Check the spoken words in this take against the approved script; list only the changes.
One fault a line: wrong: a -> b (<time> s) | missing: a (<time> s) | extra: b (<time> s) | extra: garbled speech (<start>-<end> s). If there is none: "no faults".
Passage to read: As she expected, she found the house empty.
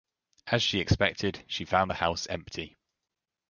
no faults